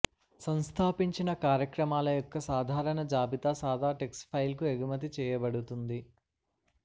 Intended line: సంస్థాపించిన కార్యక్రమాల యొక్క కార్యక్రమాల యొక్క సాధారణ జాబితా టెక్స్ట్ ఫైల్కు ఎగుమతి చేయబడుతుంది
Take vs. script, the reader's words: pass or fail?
fail